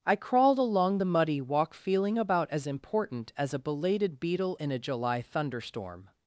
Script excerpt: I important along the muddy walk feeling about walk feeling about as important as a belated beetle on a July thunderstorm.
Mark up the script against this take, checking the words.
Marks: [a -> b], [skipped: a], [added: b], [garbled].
I [important -> crawled] along the muddy walk feeling about [skipped: walk feeling about] as important as a belated beetle [on -> in] a July thunderstorm.